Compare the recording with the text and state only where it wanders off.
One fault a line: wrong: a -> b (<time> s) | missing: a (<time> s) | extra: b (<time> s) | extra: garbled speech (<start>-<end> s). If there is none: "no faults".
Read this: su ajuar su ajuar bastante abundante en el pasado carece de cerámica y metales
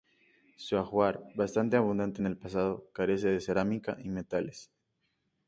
missing: su ajuar (1.3 s)